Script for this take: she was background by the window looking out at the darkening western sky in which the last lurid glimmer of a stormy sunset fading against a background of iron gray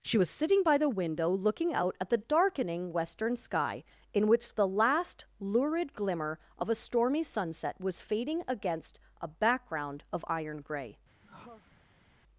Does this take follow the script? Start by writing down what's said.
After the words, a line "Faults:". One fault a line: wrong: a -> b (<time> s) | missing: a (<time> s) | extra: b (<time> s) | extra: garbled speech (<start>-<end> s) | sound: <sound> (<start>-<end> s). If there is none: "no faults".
she was sitting by the window looking out at the darkening western sky in which the last lurid glimmer of a stormy sunset was fading against a background of iron gray
Faults:
wrong: background -> sitting (0.3 s)
extra: was (7.8 s)
sound: sigh (11.2-12.1 s)